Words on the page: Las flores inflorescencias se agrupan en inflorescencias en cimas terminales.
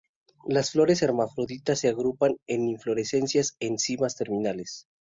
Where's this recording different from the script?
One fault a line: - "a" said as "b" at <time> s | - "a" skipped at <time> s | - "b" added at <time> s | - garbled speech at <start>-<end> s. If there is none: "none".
- "inflorescencias" said as "hermafroditas" at 1.0 s